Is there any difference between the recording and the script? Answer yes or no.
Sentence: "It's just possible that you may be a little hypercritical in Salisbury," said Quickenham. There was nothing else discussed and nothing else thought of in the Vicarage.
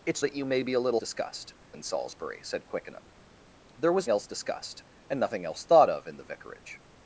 yes